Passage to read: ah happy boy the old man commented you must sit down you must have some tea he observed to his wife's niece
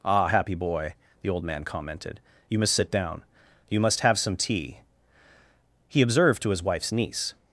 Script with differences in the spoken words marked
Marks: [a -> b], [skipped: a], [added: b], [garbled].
ah happy boy the old man commented you must sit down you must have some tea he observed to his wife's niece